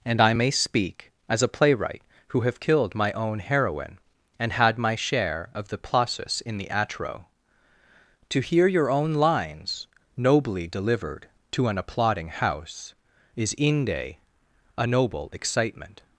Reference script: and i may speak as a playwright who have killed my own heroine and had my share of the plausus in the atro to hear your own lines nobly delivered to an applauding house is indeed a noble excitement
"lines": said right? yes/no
yes